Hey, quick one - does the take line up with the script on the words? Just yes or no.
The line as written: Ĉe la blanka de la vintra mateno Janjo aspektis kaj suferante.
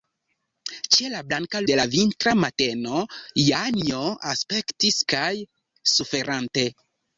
yes